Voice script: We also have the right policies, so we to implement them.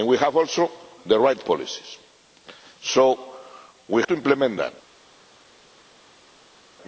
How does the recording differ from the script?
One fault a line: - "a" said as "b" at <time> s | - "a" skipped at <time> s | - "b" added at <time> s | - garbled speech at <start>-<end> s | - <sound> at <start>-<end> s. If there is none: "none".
none